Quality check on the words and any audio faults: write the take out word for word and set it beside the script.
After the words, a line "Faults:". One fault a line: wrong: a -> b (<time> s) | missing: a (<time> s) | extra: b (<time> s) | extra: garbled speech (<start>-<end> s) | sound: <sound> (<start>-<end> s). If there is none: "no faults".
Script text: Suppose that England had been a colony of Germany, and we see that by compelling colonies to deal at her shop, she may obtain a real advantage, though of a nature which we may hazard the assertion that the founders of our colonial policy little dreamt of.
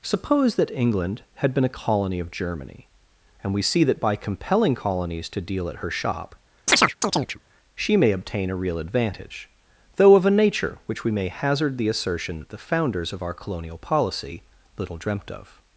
Suppose that England had been a colony of Germany, and we see that by compelling colonies to deal at her shop, she may obtain a real advantage, though of a nature which we may hazard the assertion that the founders of our colonial policy little dreamt of.
Faults:
sound: chirp (6.7-7.4 s)